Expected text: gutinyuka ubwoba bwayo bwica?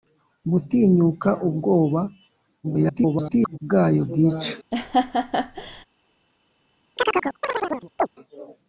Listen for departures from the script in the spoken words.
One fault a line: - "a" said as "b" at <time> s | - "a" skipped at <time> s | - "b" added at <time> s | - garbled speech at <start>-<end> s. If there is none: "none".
- garbled speech at 2.6-3.6 s